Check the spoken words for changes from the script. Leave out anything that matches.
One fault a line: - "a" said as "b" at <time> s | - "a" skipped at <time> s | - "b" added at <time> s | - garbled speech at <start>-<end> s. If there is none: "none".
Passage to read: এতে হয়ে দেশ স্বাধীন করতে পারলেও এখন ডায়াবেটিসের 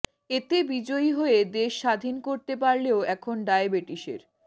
- "বিজয়ী" added at 0.7 s